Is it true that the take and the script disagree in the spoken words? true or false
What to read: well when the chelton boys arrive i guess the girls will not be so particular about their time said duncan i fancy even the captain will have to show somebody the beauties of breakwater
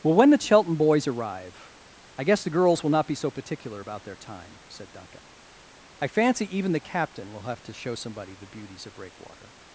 false